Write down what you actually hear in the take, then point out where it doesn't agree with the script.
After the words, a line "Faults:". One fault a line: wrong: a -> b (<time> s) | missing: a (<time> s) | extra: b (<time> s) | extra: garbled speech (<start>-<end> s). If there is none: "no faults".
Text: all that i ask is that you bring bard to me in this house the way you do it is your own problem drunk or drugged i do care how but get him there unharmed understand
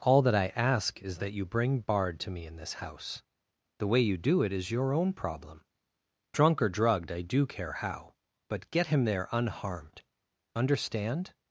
all that i ask is that you bring bard to me in this house the way you do it is your own problem drunk or drugged i do care how but get him there unharmed understand
Faults:
no faults